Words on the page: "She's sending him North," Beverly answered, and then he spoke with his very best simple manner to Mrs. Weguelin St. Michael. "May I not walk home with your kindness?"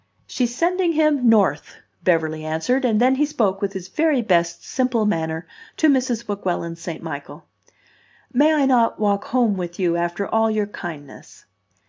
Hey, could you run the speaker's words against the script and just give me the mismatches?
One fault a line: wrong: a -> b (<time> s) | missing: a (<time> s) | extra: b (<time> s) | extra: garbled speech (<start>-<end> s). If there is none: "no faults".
extra: you after all (9.8 s)